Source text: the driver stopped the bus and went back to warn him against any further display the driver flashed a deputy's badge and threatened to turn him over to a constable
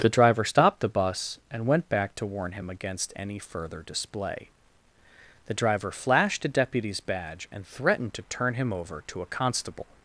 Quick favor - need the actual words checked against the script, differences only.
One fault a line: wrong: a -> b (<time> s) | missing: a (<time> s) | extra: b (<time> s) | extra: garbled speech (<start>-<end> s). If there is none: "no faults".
no faults